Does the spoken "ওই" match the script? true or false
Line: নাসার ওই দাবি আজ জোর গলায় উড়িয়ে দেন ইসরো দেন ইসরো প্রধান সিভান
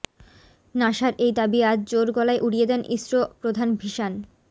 false